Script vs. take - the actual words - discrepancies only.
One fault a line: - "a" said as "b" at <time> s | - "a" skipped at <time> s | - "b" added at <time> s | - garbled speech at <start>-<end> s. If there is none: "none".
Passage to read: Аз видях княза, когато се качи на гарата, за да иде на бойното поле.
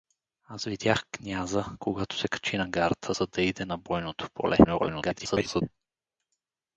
- garbled speech at 4.6-5.6 s